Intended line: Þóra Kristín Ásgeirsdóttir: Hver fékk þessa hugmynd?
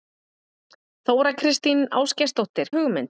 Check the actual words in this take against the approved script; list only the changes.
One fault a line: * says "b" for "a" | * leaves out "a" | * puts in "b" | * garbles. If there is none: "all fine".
* leaves out "Hver fékk þessa"